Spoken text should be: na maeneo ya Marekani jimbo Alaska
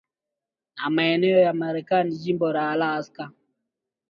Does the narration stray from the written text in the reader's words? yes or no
yes